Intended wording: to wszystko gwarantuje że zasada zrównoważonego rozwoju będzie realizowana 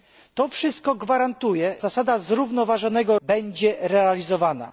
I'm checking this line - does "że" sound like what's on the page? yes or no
no